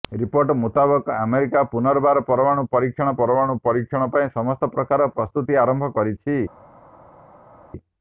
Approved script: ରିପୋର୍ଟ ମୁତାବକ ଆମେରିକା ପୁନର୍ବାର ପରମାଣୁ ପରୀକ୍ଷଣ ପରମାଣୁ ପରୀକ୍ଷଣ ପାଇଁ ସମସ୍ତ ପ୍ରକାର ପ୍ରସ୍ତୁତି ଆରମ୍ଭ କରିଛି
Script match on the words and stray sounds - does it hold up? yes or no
yes